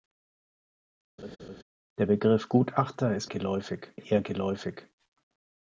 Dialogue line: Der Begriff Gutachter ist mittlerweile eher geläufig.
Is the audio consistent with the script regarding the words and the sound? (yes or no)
no